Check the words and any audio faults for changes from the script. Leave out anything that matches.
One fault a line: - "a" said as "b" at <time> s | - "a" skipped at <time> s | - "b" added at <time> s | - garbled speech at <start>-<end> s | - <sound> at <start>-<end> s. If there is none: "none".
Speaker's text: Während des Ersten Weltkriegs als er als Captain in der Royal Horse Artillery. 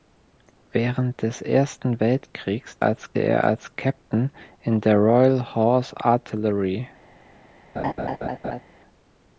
- laugh at 7.8-8.6 s